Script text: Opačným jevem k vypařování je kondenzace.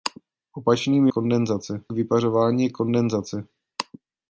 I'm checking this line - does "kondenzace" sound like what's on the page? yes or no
yes